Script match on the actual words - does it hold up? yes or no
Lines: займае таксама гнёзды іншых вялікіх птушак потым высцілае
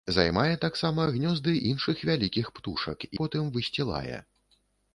yes